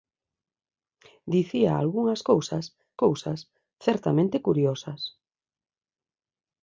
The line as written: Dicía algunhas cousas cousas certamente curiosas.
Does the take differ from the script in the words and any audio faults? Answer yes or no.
no